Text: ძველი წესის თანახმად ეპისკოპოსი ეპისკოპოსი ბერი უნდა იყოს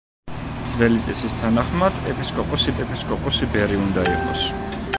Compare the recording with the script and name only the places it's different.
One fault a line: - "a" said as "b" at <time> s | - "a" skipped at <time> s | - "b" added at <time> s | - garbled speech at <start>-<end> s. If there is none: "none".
none